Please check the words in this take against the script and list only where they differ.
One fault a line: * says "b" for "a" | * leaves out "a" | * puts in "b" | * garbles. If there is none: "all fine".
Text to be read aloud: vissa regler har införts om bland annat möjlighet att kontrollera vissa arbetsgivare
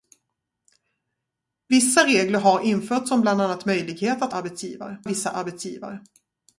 * says "arbetsgivare" for "kontrollera"